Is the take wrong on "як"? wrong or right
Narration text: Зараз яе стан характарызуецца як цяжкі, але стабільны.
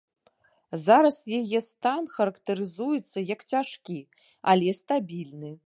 right